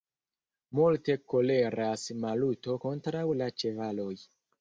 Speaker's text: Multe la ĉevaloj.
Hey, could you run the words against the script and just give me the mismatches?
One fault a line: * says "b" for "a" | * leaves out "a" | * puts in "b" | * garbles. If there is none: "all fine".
* puts in "koleras Maluto kontraŭ"